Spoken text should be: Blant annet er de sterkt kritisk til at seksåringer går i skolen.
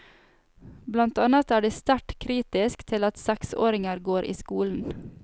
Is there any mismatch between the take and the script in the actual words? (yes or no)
no